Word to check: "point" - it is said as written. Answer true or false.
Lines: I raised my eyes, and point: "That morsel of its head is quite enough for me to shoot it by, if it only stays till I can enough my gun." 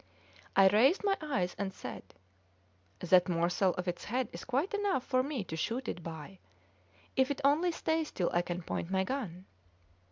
false